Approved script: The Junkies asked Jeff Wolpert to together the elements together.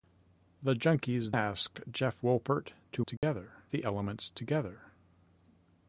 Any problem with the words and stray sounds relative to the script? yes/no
yes